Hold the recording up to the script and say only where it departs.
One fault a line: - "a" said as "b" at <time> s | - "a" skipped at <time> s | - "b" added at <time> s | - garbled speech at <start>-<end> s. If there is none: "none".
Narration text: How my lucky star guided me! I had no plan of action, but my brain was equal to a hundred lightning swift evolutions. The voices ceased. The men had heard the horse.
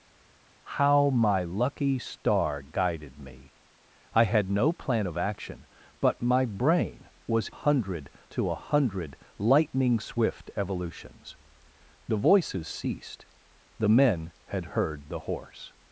- "equal" said as "hundred" at 7.5 s